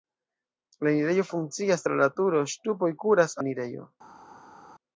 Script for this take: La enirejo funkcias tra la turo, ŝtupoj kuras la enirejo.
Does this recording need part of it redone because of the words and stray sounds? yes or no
no